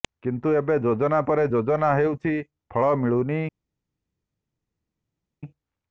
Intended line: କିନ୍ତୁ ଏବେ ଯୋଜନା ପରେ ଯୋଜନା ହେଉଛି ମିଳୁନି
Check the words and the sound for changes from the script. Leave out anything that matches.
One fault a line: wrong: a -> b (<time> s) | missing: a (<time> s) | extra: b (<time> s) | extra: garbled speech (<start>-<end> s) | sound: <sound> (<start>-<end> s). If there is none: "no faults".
extra: ଫଳ (2.7 s)